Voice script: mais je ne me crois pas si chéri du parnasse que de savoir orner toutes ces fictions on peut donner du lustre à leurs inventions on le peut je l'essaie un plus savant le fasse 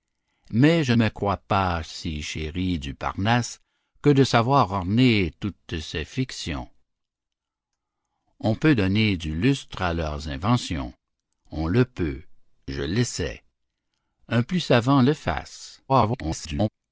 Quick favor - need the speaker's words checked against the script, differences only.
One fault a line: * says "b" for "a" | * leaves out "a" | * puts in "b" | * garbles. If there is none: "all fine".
* leaves out "ne"
* garbles